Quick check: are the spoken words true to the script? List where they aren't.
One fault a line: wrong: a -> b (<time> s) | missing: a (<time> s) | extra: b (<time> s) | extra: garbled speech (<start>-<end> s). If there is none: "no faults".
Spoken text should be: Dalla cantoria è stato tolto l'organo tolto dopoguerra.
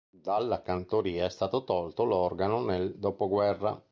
wrong: tolto -> nel (2.6 s)